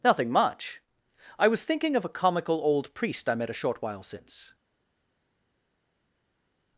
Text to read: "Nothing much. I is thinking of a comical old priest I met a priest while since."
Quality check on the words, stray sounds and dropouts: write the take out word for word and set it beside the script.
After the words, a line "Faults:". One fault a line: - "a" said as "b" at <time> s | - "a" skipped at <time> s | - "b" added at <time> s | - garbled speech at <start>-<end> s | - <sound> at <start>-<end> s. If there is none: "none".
"Nothing much. I was thinking of a comical old priest I met a short while since."
Faults:
- "is" said as "was" at 1.5 s
- "priest" said as "short" at 3.6 s